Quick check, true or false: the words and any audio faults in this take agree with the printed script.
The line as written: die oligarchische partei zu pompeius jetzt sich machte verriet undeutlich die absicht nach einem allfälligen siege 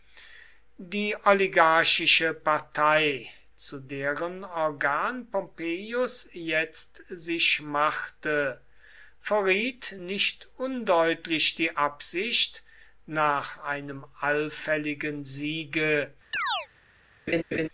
false